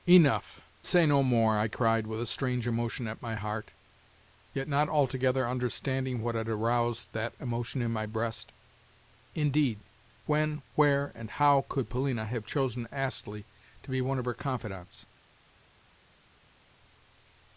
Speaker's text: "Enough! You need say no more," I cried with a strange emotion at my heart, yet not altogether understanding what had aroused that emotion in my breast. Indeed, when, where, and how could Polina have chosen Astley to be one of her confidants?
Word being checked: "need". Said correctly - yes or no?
no